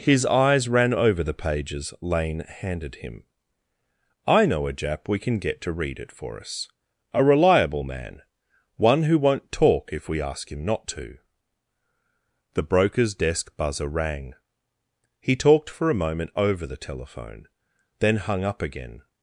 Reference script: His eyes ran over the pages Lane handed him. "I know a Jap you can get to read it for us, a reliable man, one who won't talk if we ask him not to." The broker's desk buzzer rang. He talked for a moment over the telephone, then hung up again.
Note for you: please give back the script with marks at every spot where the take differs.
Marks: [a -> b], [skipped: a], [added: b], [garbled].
His eyes ran over the pages Lane handed him. "I know a Jap [you -> we] can get to read it for us, a reliable man, one who won't talk if we ask him not to." The broker's desk buzzer rang. He talked for a moment over the telephone, then hung up again.